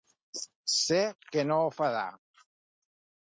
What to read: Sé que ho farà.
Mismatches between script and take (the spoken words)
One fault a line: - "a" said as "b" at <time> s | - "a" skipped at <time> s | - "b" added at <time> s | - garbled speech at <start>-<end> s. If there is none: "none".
- "no" added at 1.5 s